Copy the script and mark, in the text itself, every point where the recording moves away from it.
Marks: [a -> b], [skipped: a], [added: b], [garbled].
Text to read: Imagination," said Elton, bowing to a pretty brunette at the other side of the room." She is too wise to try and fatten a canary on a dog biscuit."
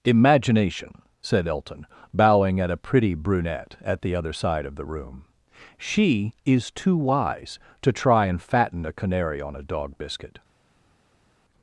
Imagination," said Elton, bowing [to -> at] a pretty brunette at the other side of the room." She is too wise to try and fatten a canary on a dog biscuit."